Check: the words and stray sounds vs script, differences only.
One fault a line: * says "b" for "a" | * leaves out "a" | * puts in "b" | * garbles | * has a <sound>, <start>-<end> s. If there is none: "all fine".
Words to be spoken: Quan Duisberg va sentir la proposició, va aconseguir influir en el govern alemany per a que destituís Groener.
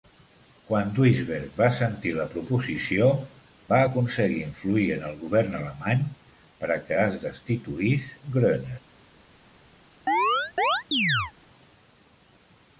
* puts in "es"
* has a chirp, 10.1-11.3 s